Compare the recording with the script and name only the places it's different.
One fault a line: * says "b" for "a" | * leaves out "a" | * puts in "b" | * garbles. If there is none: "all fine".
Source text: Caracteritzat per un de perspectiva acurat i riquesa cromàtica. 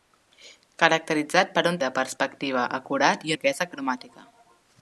all fine